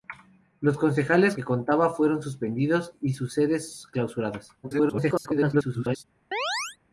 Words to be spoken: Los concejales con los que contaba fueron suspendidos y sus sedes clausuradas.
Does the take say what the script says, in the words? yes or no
no